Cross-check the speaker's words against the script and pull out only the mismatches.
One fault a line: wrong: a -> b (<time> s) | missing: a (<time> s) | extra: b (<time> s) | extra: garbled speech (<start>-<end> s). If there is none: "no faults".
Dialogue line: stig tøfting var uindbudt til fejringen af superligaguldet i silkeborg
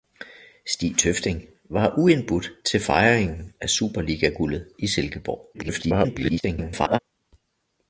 extra: garbled speech (5.5-7.0 s)